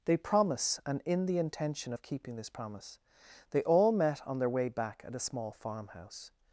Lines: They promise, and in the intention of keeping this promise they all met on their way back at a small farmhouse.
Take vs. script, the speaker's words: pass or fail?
pass